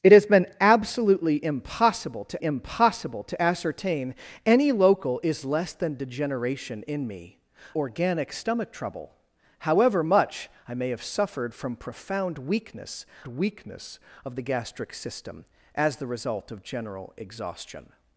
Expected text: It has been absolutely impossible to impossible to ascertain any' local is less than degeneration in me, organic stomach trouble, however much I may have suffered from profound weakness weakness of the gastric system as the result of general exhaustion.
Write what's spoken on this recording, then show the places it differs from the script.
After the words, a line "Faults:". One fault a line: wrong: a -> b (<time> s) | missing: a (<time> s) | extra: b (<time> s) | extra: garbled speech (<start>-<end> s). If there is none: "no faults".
It has been absolutely impossible to impossible to ascertain any' local is less than degeneration in me, organic stomach trouble, however much I may have suffered from profound weakness weakness of the gastric system as the result of general exhaustion.
Faults:
no faults